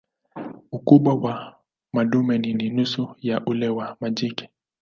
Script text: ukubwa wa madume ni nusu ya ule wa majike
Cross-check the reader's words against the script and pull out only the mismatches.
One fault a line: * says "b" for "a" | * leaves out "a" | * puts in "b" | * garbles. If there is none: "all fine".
* puts in "ni"